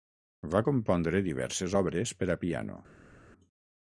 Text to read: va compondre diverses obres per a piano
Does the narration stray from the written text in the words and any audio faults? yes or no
no